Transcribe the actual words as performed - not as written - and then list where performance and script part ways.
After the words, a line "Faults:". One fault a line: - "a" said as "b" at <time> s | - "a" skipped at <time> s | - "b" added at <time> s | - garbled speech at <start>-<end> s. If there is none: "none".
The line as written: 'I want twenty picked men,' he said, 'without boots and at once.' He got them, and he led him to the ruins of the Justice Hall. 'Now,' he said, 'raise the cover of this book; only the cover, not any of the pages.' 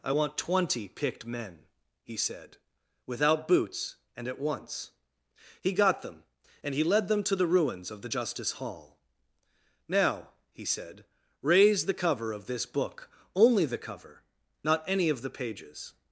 'I want twenty picked men,' he said, 'without boots and at once.' He got them, and he led them to the ruins of the Justice Hall. 'Now,' he said, 'raise the cover of this book; only the cover, not any of the pages.'
Faults:
- "him" said as "them" at 7.1 s